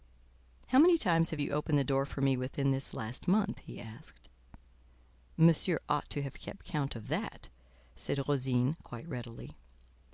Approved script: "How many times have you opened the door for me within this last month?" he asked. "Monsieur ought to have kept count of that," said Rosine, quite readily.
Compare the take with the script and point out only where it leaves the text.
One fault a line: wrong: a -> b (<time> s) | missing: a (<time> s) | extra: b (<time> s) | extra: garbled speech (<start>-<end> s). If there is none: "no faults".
no faults